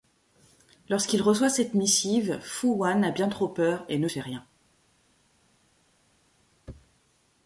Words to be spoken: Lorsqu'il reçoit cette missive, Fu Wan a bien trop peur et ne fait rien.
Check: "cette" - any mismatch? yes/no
no